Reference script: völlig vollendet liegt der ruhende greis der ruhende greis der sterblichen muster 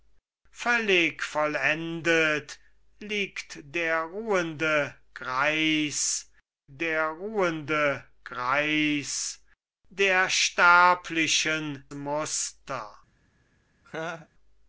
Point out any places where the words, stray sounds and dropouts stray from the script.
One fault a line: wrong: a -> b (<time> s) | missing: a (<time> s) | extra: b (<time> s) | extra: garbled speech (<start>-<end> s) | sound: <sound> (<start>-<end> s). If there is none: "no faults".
sound: laugh (13.8-14.3 s)